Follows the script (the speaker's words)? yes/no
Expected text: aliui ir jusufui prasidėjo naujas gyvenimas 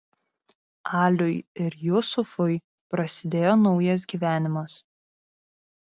yes